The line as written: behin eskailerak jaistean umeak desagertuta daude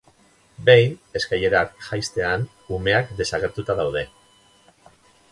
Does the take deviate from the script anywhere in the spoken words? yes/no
no